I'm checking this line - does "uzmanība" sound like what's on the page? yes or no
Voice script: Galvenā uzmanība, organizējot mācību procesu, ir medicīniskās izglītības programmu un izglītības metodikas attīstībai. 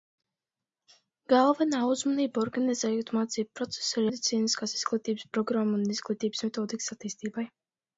yes